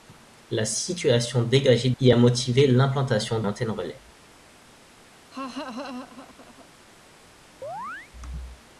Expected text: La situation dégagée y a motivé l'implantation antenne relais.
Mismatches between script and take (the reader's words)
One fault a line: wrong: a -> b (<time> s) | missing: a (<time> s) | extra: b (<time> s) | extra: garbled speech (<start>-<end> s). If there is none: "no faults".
no faults